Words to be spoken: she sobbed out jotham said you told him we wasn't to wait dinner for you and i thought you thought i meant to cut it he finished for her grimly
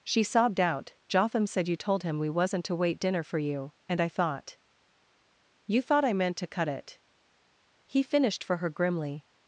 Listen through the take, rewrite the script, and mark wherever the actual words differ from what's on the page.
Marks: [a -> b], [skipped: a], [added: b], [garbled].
she sobbed out jotham said you told him we wasn't to wait dinner for you and i thought you thought i meant to cut it he finished for her grimly